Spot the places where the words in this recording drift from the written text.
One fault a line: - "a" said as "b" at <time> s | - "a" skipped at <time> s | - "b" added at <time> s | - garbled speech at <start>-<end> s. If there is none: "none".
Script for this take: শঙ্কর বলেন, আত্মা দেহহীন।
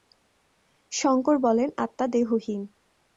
none